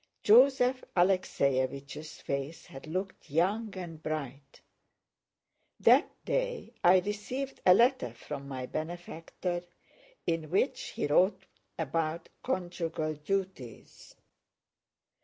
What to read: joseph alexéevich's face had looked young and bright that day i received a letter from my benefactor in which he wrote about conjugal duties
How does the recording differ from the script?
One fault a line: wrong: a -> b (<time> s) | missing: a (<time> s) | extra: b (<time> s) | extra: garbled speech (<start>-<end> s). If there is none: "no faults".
no faults